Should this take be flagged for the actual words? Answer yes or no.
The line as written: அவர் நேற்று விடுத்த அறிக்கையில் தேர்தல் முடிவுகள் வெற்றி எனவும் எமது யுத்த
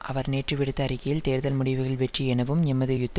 no